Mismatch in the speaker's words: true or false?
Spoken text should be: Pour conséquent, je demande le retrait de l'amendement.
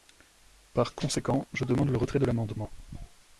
true